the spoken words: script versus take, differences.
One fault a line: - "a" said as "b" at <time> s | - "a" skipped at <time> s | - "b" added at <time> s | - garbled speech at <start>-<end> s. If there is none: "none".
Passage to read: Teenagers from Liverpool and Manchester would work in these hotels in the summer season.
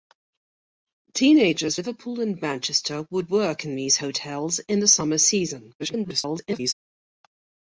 - "from" skipped at 1.8 s
- garbled speech at 5.8-6.7 s